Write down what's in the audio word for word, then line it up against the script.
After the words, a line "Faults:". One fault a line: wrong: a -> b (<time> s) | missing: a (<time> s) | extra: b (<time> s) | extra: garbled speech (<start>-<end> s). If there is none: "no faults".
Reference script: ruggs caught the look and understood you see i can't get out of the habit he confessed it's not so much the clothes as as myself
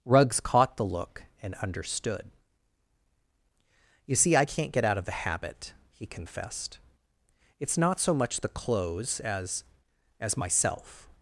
ruggs caught the look and understood you see i can't get out of the habit he confessed it's not so much the clothes as as myself
Faults:
no faults